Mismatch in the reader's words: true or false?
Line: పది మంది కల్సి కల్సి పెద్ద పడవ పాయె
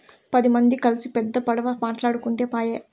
true